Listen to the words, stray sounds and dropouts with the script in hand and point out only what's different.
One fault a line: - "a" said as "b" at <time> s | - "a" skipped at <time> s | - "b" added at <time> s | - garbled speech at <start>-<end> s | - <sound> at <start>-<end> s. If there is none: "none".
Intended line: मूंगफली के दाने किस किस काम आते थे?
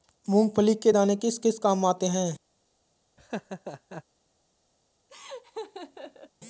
- "थे" said as "हैं" at 2.1 s
- laugh at 3.2-4.0 s
- laugh at 5.1-6.3 s